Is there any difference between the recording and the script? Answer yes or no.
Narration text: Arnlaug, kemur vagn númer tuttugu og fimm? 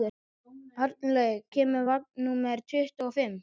no